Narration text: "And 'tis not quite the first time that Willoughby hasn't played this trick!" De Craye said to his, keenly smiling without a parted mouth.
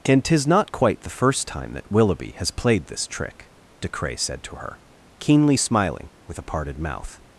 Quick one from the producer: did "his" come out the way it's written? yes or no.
no